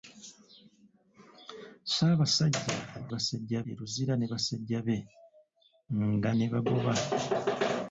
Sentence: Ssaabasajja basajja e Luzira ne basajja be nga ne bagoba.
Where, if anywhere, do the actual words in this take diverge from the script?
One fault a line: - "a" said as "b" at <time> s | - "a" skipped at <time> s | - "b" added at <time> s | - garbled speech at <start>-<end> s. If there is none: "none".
none